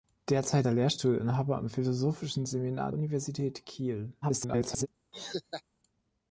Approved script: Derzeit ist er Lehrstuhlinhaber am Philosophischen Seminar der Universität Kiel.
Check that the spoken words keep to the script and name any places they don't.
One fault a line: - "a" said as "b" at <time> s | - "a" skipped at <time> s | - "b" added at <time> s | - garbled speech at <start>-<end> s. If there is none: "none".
- "ist" skipped at 0.7 s
- "der" skipped at 2.9 s
- garbled speech at 4.2-4.9 s